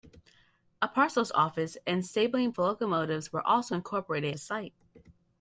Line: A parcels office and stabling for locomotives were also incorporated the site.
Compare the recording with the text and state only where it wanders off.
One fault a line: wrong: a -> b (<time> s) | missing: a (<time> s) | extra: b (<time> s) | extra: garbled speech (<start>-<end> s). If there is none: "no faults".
no faults